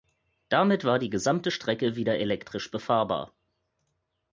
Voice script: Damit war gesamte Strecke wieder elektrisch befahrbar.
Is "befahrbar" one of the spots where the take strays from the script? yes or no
no